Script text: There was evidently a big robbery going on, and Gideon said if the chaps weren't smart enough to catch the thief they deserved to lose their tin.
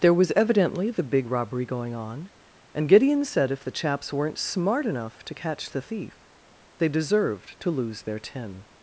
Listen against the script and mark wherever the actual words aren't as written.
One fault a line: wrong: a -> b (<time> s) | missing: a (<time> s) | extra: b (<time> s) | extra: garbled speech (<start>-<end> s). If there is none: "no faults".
wrong: a -> the (0.9 s)